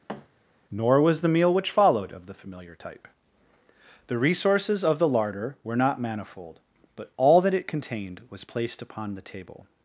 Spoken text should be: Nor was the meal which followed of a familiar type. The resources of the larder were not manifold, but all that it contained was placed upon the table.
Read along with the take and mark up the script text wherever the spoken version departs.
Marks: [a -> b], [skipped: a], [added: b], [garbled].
Nor was the meal which followed of [a -> the] familiar type. The resources of the larder were not manifold, but all that it contained was placed upon the table.